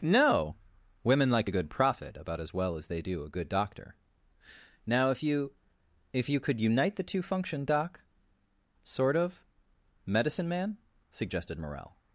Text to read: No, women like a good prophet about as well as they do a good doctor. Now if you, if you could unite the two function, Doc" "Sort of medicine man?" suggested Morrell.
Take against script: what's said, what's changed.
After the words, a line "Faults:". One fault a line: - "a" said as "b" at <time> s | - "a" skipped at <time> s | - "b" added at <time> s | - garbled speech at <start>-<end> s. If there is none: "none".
No, women like a good prophet about as well as they do a good doctor. Now if you, if you could unite the two function, Doc" "Sort of medicine man?" suggested Morrell.
Faults:
none